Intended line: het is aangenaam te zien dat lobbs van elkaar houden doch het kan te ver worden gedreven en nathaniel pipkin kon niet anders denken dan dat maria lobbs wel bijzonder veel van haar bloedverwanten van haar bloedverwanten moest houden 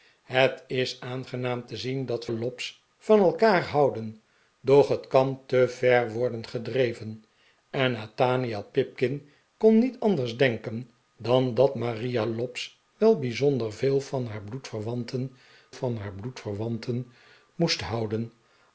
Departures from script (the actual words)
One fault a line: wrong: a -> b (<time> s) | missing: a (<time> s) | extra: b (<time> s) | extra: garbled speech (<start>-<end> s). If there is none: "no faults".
no faults